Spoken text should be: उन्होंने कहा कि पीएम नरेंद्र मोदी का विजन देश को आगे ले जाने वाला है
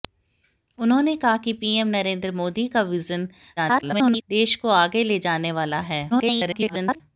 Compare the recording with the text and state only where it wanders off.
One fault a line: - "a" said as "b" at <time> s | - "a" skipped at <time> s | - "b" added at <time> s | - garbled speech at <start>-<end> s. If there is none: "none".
- garbled speech at 3.6-4.2 s
- garbled speech at 6.1-7.0 s